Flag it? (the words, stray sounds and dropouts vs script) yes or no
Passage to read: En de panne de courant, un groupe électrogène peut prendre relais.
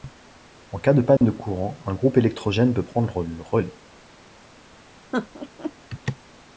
yes